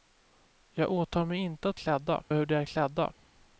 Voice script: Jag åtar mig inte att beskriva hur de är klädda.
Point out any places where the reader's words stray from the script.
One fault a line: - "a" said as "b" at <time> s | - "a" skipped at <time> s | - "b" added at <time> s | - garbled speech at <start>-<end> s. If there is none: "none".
- "beskriva" said as "klädda" at 1.8 s